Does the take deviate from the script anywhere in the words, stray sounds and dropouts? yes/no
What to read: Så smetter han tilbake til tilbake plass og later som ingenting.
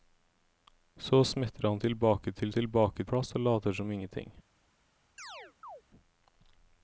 yes